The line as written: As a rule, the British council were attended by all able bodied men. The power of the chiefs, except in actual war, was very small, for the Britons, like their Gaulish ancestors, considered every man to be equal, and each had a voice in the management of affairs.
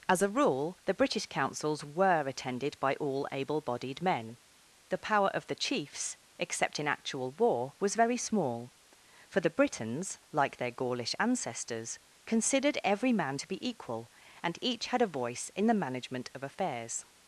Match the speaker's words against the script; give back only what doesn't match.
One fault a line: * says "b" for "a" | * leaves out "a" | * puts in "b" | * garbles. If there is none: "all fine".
* says "councils" for "council"